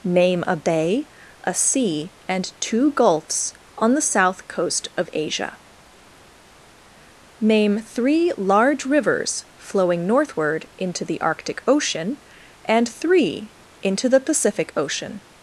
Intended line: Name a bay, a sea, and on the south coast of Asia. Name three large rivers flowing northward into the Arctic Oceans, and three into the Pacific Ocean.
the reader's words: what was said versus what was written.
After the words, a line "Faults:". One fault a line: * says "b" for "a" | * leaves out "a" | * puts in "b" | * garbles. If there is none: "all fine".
Name a bay, a sea, and two gulfs on the south coast of Asia. Name three large rivers flowing northward into the Arctic Ocean, and three into the Pacific Ocean.
Faults:
* puts in "two gulfs"
* says "Ocean" for "Oceans"